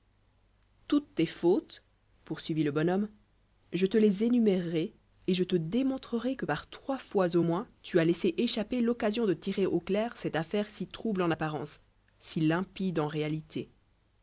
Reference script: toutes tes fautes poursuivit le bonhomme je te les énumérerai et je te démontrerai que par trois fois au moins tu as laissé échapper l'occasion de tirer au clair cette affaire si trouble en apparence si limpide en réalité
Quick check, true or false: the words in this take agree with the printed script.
true